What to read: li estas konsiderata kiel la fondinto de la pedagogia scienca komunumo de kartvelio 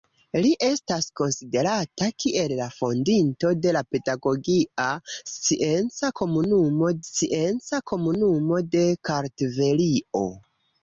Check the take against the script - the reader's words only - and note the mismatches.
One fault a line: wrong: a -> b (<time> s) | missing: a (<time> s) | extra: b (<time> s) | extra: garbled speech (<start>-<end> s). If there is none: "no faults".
extra: scienca komunumo (7.1 s)